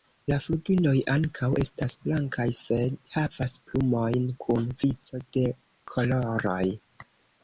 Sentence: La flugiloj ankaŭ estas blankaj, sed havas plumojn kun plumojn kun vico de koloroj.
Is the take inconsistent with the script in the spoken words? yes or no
yes